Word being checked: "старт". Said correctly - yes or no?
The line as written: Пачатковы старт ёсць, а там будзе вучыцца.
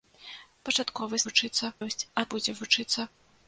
no